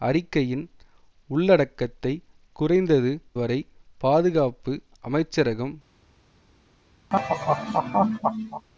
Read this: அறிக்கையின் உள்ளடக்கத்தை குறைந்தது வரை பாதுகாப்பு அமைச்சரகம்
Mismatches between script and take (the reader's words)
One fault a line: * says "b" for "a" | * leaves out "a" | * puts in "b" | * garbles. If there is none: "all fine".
all fine